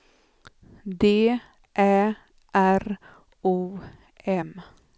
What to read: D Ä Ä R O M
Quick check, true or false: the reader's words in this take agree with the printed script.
false